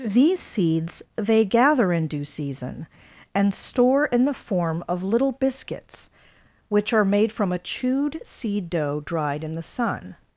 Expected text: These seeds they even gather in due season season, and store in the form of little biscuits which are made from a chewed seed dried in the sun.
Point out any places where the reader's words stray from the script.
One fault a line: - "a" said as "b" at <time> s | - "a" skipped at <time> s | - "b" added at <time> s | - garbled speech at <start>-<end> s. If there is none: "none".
- "even" skipped at 1.4 s
- "season" skipped at 2.9 s
- "dough" added at 8.7 s